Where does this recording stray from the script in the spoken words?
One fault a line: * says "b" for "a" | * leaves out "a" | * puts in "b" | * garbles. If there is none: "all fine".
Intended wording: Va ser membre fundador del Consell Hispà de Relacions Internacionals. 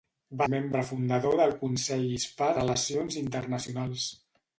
* leaves out "ser"
* leaves out "de"